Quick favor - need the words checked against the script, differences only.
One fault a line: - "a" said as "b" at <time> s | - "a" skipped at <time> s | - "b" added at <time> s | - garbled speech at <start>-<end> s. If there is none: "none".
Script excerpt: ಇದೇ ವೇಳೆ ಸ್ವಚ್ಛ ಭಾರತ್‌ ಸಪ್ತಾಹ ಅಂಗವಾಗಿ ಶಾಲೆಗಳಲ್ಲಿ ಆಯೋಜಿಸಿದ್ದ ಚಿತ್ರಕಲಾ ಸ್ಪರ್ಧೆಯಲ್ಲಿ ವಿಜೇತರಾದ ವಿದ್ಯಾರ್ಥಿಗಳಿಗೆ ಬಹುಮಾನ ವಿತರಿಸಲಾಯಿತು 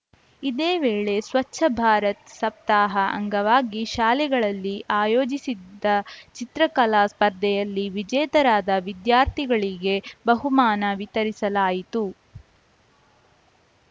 none